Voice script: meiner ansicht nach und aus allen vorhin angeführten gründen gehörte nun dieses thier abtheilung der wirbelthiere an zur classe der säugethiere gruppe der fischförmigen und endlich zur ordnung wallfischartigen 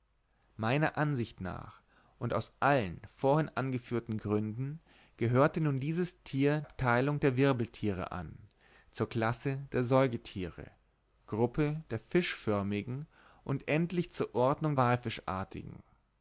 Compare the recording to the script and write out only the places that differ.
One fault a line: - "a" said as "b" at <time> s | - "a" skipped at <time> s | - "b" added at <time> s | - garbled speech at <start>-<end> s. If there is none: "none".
none